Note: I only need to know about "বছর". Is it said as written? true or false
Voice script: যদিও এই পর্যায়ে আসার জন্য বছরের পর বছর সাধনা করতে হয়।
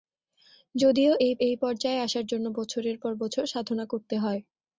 true